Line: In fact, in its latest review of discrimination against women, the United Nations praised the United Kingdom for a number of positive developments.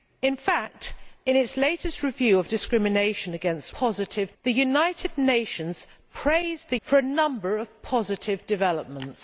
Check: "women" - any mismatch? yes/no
yes